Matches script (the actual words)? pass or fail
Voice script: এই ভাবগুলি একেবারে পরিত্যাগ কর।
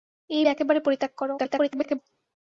fail